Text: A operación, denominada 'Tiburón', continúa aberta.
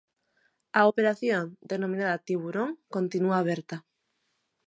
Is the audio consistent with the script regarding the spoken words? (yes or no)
yes